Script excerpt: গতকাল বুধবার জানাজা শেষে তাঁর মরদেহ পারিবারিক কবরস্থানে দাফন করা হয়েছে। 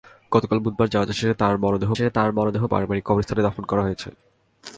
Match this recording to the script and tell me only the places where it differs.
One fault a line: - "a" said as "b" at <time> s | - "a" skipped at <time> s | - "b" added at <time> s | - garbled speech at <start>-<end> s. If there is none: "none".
- "শেষে তাঁর মরদেহ" added at 1.9 s